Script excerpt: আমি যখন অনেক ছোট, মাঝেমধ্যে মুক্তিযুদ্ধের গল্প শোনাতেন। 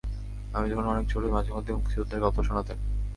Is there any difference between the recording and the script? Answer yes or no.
no